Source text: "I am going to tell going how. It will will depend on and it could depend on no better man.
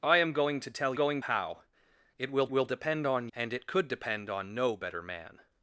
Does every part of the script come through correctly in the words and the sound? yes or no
yes